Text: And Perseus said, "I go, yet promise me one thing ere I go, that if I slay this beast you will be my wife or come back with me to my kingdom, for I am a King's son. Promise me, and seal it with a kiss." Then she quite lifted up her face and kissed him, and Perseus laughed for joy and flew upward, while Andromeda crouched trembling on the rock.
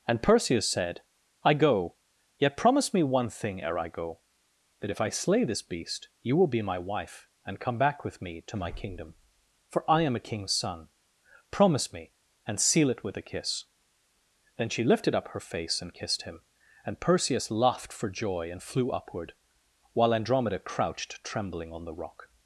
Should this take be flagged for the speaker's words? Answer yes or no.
yes